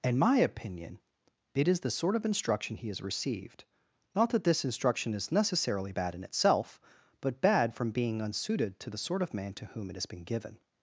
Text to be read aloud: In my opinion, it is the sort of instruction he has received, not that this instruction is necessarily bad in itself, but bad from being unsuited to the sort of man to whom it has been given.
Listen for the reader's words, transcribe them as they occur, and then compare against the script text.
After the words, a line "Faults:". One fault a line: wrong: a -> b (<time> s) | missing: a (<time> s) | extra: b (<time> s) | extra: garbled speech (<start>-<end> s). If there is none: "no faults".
In my opinion, it is the sort of instruction he has received, not that this instruction is necessarily bad in itself, but bad from being unsuited to the sort of man to whom it has been given.
Faults:
no faults